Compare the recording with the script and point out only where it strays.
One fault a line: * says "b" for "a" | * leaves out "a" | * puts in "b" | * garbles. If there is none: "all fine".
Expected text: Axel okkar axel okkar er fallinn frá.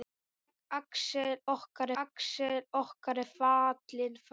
all fine